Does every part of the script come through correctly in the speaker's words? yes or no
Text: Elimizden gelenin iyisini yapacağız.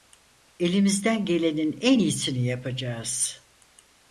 no